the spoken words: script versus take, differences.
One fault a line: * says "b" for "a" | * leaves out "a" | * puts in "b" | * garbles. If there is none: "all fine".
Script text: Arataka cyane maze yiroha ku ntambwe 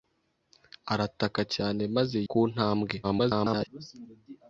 * leaves out "yiroha"
* garbles